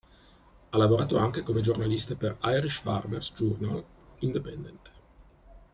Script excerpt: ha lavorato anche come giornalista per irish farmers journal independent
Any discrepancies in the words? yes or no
no